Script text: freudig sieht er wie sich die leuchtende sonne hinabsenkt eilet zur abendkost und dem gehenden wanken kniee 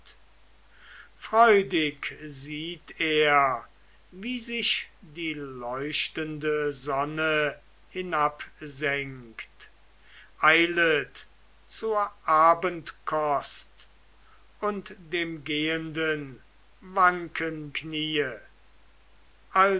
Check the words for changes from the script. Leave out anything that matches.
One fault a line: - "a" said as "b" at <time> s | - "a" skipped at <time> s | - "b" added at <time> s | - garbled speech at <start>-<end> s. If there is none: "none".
none